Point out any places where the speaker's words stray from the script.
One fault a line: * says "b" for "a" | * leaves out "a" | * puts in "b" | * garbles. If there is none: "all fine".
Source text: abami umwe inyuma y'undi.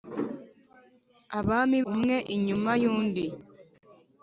all fine